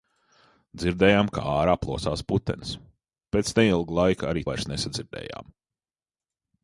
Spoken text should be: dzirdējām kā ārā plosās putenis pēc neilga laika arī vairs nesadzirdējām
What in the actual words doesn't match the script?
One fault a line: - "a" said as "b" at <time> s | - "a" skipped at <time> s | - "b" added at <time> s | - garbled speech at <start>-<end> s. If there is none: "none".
none